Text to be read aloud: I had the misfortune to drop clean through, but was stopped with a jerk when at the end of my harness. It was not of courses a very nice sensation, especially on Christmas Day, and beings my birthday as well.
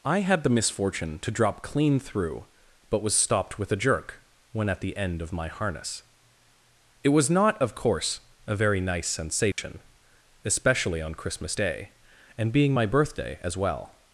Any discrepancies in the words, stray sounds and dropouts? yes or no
yes